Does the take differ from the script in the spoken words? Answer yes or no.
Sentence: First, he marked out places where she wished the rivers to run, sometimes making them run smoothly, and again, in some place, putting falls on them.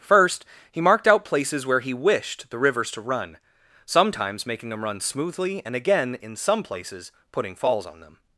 yes